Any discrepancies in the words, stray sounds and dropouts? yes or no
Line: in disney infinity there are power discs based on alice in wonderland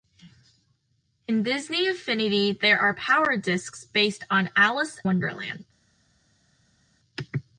yes